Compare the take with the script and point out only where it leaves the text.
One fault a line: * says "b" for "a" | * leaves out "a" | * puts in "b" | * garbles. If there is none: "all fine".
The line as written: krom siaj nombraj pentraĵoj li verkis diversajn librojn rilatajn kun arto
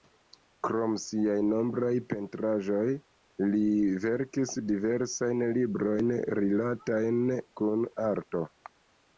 all fine